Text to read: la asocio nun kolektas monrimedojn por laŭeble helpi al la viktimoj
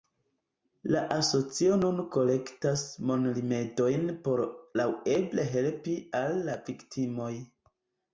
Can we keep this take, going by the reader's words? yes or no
yes